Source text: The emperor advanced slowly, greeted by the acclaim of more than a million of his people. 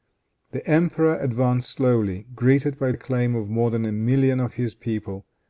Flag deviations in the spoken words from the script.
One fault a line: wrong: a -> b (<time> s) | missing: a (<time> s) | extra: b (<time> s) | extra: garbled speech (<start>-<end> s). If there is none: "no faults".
missing: the (2.9 s)